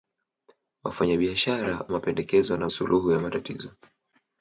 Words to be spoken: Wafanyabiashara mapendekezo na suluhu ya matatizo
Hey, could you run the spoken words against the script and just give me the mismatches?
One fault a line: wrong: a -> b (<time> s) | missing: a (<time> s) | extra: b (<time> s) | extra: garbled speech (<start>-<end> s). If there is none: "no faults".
no faults